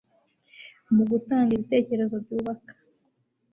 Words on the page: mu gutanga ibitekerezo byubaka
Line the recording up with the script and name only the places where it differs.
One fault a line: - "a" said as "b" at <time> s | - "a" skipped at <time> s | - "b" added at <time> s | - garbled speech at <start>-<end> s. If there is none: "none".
none